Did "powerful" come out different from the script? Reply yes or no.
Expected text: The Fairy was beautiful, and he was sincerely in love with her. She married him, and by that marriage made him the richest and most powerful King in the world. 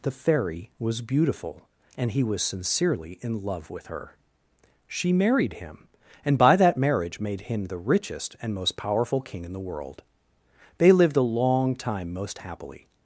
no